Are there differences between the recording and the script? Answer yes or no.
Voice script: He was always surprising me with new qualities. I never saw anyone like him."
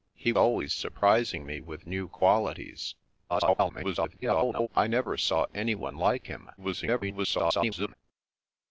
yes